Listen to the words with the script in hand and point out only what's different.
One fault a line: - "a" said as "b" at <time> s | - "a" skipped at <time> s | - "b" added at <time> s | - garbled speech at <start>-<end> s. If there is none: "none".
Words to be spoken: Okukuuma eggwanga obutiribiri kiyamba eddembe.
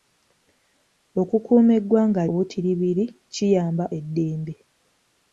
none